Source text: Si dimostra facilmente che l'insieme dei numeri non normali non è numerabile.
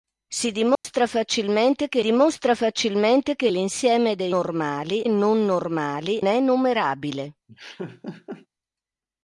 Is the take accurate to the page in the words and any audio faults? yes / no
no